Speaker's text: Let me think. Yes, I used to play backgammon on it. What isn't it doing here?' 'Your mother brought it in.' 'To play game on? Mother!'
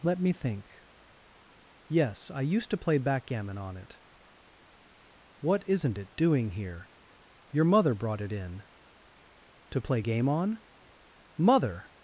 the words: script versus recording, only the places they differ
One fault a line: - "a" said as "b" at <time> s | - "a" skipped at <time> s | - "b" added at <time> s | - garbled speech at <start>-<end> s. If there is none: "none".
none